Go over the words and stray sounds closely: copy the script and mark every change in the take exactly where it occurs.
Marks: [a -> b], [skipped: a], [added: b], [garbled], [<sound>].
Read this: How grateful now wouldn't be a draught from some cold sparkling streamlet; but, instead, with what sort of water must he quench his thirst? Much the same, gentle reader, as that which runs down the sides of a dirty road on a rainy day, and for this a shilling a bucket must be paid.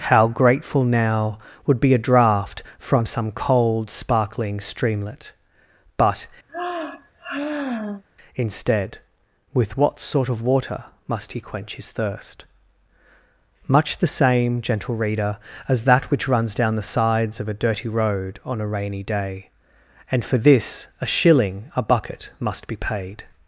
How grateful now [wouldn't -> would] be a draught from some cold sparkling streamlet; but, [sigh] instead, with what sort of water must he quench his thirst? Much the same, gentle reader, as that which runs down the sides of a dirty road on a rainy day, and for this a shilling a bucket must be paid.